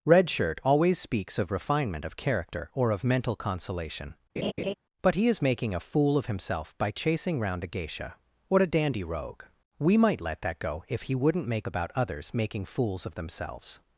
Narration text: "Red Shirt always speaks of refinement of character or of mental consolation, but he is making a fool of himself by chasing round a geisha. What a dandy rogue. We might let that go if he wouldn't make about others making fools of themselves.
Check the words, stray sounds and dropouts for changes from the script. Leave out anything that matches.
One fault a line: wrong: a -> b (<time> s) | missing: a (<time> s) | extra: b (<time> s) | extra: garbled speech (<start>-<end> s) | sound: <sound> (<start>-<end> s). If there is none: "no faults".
sound: laugh (4.4-4.7 s)